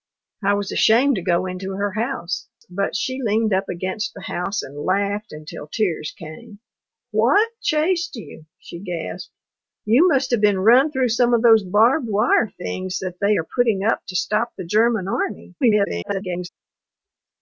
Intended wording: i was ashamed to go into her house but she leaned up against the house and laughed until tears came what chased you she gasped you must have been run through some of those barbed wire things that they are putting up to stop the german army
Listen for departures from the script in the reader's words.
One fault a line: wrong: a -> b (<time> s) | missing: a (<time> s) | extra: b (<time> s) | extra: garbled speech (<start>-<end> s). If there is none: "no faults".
extra: garbled speech (15.6-16.5 s)